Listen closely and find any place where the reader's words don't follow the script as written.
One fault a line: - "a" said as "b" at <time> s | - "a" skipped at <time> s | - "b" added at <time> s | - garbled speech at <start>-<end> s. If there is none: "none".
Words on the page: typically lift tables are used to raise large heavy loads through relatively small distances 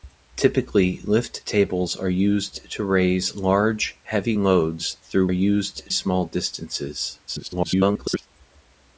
- "relatively" said as "used" at 5.3 s
- garbled speech at 7.3-8.3 s